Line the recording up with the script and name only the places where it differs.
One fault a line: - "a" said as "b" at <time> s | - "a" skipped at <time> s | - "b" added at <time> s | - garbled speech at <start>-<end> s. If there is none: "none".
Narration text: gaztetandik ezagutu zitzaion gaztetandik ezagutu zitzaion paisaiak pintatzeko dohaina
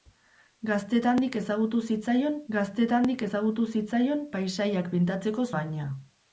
none